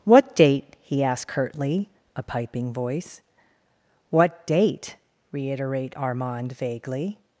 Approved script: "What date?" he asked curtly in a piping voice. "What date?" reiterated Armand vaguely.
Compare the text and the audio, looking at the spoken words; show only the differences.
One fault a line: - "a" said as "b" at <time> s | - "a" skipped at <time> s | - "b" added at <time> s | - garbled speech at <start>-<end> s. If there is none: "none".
- "in" skipped at 1.9 s
- "reiterated" said as "reiterate" at 5.3 s